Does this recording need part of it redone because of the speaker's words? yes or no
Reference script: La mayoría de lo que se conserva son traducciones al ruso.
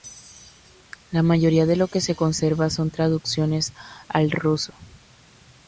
no